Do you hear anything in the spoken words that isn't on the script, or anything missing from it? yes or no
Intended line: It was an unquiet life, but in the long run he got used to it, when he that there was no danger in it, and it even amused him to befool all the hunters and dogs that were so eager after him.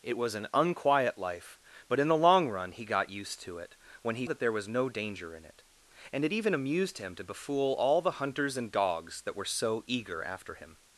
no